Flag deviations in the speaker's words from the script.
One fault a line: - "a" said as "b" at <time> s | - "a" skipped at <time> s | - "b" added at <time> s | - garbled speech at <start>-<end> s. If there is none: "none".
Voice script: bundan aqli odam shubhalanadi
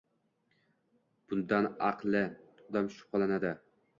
none